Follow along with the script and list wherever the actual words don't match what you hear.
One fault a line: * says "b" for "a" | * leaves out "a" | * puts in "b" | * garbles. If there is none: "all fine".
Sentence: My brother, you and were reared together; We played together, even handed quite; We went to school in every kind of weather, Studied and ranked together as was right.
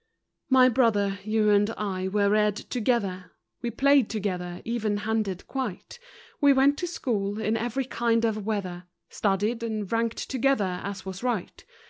* puts in "I"